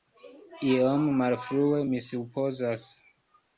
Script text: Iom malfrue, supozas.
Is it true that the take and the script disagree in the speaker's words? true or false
true